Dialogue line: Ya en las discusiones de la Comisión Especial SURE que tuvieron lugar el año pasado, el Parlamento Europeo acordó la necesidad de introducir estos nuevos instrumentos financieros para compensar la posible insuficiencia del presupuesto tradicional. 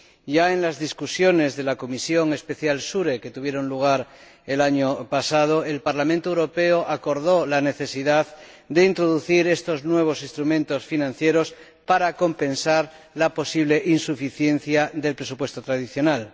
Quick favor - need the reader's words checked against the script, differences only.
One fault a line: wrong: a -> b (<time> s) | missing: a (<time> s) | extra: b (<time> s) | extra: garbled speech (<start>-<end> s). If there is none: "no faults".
no faults